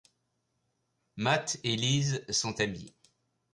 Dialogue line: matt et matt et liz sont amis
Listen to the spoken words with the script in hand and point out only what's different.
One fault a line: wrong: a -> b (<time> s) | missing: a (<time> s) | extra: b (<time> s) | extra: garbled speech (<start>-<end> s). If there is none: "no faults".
missing: matt et (1.8 s)